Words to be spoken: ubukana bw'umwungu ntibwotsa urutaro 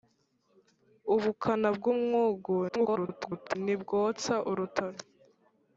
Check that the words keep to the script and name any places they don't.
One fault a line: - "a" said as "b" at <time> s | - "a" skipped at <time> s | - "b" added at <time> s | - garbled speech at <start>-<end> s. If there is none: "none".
- garbled speech at 2.7-3.6 s